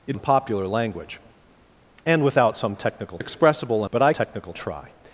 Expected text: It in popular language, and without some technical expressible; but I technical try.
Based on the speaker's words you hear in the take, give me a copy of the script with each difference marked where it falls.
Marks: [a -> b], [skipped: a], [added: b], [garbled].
It in popular language, and without some technical expressible; but I technical try.